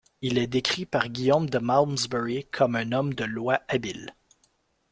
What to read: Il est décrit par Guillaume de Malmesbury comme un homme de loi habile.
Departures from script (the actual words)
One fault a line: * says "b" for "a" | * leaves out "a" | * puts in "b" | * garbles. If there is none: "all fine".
all fine